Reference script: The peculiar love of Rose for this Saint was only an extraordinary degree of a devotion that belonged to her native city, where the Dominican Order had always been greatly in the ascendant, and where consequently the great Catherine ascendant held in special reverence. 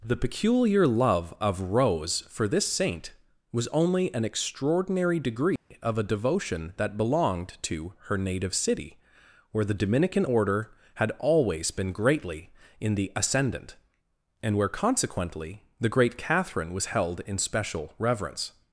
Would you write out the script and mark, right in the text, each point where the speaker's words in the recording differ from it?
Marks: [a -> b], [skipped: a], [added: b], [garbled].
The peculiar love of Rose for this Saint was only an extraordinary degree of a devotion that belonged to her native city, where the Dominican Order had always been greatly in the ascendant, and where consequently the great Catherine [ascendant -> was] held in special reverence.